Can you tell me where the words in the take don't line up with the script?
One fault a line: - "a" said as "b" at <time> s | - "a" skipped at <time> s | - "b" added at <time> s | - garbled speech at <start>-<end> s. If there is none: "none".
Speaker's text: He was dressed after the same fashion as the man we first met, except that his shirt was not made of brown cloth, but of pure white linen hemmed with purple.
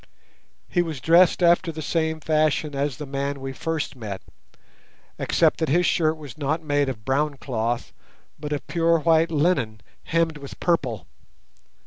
none